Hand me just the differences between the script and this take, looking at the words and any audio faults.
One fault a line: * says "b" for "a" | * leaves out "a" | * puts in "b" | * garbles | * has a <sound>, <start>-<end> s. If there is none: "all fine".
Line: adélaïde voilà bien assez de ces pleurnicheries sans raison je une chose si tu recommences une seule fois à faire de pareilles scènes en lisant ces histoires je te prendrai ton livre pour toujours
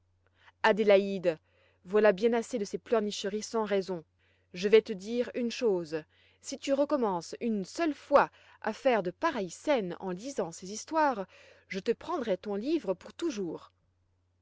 * puts in "vais te dire"